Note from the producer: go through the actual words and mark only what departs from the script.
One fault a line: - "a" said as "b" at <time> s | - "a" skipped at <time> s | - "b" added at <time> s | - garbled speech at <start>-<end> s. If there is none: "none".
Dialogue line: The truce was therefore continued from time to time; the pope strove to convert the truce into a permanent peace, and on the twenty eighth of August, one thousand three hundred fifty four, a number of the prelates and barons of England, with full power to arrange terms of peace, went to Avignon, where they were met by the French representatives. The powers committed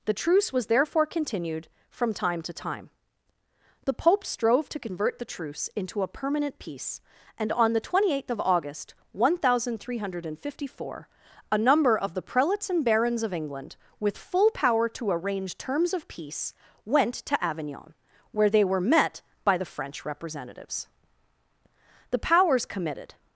none